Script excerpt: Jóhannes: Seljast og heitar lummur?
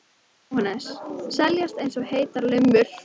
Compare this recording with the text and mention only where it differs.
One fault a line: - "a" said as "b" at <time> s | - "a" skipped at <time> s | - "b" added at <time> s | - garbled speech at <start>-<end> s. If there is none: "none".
- "eins" added at 1.9 s